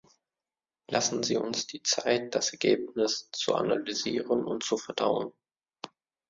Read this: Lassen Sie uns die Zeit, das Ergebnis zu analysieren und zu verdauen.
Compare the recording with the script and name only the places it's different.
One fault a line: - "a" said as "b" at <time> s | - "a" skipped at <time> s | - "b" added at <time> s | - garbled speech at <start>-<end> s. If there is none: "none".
none